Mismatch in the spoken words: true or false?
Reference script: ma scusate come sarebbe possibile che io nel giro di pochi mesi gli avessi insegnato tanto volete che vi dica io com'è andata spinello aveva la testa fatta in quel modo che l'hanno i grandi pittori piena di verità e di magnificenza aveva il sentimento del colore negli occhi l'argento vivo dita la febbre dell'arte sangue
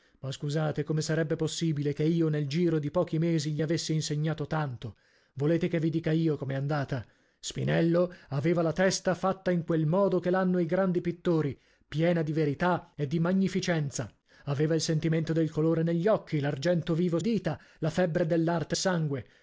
false